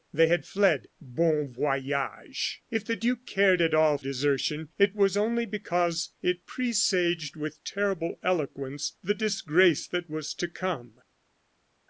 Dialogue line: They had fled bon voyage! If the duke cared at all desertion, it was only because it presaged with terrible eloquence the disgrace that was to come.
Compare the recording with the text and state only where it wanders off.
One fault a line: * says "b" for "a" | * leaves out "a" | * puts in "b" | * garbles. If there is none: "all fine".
all fine